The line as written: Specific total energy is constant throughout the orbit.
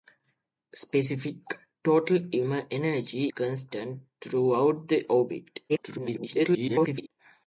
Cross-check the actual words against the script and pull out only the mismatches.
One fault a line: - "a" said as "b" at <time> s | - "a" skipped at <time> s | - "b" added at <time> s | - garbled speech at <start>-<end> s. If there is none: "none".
- "is" skipped at 3.2 s
- garbled speech at 5.7-7.1 s